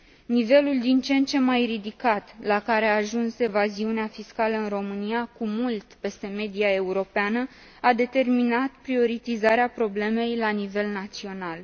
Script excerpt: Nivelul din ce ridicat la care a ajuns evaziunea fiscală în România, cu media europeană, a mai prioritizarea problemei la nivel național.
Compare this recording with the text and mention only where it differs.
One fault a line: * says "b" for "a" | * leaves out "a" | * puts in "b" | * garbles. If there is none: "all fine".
* puts in "în ce mai"
* puts in "mult peste"
* says "determinat" for "mai"